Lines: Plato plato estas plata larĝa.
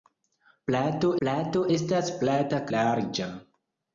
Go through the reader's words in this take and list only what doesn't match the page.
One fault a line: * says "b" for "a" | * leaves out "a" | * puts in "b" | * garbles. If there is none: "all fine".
all fine